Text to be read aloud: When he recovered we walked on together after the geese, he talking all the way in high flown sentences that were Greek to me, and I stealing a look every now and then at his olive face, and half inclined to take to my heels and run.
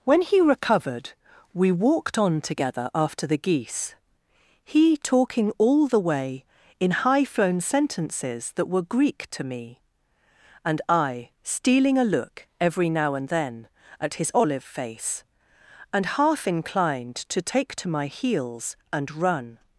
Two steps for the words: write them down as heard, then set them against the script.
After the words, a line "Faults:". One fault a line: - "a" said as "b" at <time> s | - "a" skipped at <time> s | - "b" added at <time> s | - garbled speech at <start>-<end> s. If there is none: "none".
When he recovered we walked on together after the geese, he talking all the way in high flown sentences that were Greek to me, and I stealing a look every now and then at his olive face, and half inclined to take to my heels and run.
Faults:
none